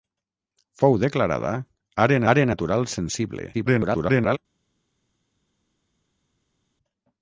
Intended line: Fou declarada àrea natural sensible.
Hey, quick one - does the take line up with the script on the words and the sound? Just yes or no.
no